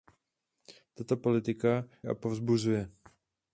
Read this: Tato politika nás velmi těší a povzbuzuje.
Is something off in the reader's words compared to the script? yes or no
yes